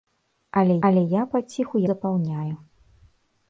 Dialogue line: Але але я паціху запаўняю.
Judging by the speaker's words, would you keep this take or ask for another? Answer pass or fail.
pass